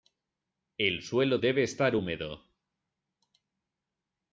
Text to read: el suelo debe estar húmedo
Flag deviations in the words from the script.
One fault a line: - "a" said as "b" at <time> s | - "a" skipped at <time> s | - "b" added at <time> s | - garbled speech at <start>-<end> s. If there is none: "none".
none